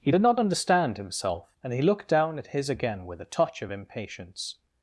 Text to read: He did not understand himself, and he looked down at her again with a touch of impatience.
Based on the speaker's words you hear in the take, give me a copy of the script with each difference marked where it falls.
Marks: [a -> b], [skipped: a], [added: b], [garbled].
He did not understand himself, and he looked down at [her -> his] again with a touch of impatience.